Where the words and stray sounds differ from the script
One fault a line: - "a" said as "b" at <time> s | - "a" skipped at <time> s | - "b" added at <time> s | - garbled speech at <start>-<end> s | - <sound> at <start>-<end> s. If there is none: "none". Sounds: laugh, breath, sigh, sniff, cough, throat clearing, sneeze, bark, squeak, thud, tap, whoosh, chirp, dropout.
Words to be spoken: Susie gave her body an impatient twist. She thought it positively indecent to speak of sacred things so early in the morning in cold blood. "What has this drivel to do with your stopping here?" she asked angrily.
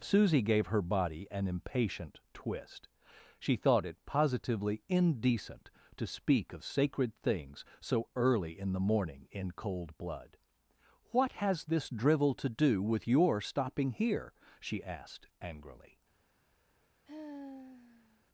- sigh at 17.1-18.2 s